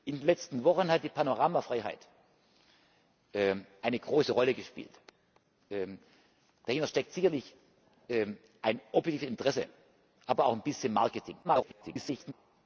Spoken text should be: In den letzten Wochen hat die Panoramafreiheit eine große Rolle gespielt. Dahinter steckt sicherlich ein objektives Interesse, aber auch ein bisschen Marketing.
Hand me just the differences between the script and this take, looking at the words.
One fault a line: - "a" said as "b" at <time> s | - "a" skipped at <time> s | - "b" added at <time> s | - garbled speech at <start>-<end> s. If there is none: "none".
- garbled speech at 11.4-12.3 s